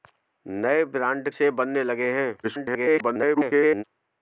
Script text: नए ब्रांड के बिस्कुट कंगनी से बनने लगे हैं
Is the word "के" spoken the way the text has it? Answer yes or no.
no